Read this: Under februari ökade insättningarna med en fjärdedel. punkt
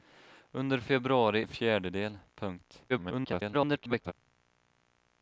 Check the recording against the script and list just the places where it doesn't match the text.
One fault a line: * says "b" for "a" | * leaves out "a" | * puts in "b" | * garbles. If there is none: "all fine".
* leaves out "ökade insättningarna med"
* garbles